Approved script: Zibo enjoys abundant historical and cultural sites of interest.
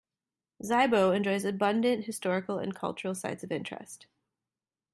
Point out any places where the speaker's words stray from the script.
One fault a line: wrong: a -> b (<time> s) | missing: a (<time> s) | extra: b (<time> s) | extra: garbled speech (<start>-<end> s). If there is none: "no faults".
no faults